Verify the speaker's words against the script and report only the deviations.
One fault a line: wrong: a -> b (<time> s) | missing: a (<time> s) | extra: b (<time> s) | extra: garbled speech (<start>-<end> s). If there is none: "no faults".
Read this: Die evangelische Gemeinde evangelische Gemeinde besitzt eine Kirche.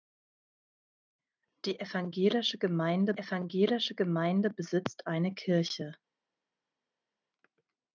no faults